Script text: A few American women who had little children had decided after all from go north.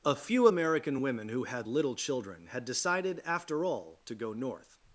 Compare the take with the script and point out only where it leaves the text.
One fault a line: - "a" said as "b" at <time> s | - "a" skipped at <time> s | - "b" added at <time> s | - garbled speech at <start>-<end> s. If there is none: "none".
- "from" said as "to" at 4.0 s